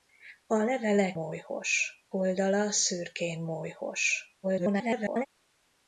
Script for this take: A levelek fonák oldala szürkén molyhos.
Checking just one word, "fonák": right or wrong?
wrong